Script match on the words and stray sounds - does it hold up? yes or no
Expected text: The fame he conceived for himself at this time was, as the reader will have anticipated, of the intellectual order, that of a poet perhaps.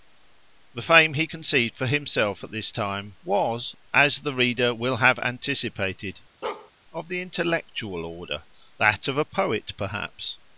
no